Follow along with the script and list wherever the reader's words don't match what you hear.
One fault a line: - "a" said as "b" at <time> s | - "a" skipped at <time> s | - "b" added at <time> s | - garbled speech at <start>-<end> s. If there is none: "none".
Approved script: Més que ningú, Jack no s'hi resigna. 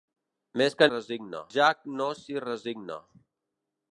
- "ningú" said as "resigna" at 0.9 s